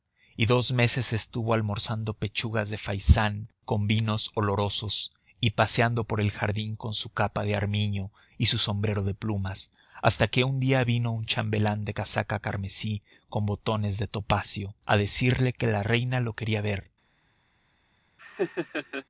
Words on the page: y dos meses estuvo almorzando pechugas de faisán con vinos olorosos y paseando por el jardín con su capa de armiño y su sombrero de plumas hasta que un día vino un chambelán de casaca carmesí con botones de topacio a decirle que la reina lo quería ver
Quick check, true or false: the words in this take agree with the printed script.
true